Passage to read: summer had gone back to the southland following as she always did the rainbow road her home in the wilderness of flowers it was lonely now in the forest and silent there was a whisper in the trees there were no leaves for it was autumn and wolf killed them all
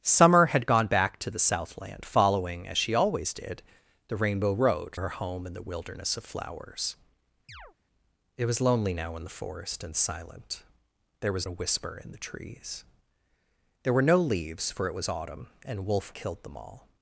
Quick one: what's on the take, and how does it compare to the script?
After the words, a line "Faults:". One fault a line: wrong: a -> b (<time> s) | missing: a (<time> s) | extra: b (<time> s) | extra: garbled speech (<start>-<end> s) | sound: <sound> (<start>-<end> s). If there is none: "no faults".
summer had gone back to the southland following as she always did the rainbow road her home in the wilderness of flowers it was lonely now in the forest and silent there was a whisper in the trees there were no leaves for it was autumn and wolf killed them all
Faults:
sound: chirp (7.5-7.8 s)